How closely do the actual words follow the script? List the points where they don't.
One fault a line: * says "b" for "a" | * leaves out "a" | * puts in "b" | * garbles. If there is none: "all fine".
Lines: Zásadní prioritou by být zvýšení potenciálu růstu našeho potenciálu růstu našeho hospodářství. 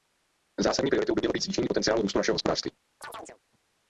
* puts in "mělo"
* leaves out "potenciálu růstu našeho"